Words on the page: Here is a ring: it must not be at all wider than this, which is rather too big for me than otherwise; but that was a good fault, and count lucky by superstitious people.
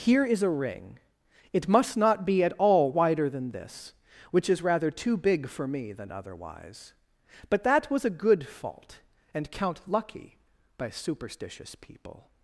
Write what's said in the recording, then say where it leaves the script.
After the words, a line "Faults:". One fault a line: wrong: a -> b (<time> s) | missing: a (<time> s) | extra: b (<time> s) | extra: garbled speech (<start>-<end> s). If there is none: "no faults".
Here is a ring: it must not be at all wider than this, which is rather too big for me than otherwise; but that was a good fault, and count lucky by superstitious people.
Faults:
no faults